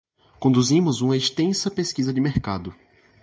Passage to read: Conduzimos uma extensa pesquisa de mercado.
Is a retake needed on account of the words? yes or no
no